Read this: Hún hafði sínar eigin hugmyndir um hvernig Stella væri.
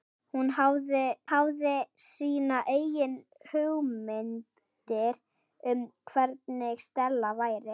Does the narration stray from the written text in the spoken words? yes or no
yes